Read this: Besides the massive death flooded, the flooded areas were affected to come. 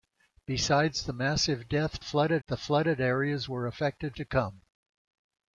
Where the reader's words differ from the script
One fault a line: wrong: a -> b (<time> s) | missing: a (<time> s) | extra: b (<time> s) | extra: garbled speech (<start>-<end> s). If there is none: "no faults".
no faults